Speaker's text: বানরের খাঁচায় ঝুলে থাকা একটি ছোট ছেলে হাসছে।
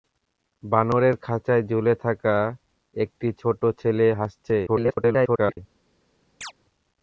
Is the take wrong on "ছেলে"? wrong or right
right